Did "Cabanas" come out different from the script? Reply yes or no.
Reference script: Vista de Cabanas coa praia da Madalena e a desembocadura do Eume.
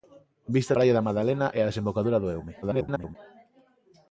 yes